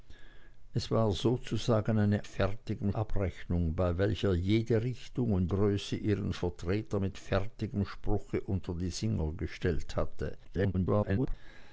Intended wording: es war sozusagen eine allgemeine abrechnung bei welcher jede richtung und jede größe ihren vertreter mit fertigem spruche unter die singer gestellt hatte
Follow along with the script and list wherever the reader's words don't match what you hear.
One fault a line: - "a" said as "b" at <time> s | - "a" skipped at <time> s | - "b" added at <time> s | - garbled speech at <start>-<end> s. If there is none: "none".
- "allgemeine" said as "fertigem" at 2.2 s
- "jede" skipped at 5.5 s
- garbled speech at 10.4-11.3 s